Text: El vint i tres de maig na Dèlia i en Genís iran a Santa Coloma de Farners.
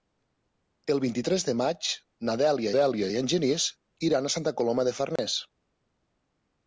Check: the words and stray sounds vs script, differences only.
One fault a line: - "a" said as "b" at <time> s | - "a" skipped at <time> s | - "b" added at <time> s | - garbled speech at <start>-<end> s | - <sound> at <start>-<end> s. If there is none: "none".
- "Dèlia" added at 2.8 s
- dropout at 5.2-5.2 s